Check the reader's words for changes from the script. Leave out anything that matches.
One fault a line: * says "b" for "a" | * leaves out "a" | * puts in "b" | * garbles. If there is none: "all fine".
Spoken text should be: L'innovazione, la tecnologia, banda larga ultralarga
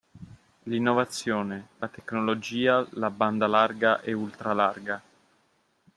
* puts in "la"
* puts in "e"